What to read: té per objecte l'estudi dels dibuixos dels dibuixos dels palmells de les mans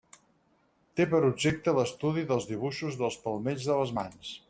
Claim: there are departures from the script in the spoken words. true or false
true